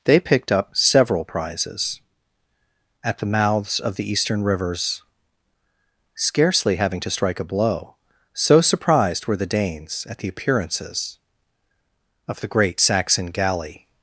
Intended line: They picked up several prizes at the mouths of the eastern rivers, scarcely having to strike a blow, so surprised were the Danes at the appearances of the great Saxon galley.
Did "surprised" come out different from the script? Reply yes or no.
no